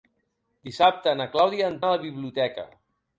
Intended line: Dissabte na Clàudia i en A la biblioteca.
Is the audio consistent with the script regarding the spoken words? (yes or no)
yes